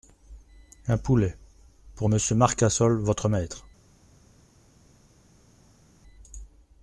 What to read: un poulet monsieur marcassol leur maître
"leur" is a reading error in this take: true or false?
true